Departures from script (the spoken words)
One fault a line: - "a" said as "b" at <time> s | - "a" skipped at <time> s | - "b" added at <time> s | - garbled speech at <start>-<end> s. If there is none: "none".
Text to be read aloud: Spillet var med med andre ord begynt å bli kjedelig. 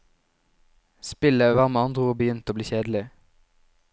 - "med" skipped at 1.8 s